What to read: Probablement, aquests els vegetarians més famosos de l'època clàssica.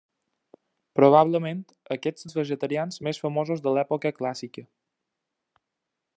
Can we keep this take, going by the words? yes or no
yes